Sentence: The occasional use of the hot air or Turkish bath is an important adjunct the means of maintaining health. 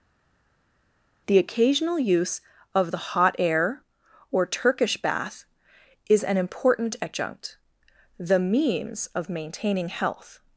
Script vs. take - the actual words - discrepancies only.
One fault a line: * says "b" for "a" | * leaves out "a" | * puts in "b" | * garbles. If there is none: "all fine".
all fine